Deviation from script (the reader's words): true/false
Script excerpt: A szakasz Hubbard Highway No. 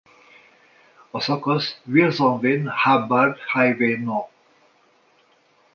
true